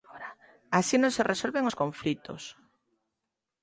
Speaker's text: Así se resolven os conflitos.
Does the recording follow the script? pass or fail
fail